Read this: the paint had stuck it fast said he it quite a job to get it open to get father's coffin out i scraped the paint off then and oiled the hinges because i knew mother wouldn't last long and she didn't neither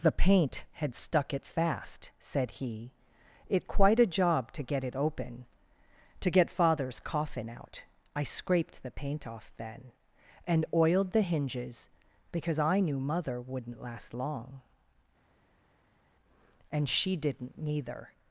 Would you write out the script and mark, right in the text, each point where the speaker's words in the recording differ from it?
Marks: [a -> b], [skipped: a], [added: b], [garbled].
the paint had stuck it fast said he it quite a job to get it open to get father's coffin out i scraped the paint off then and oiled the hinges because i knew mother wouldn't last long and she didn't neither